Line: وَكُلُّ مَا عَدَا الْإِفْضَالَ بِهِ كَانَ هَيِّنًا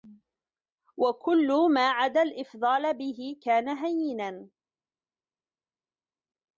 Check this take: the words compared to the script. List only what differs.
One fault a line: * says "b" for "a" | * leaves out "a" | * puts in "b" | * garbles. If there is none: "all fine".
all fine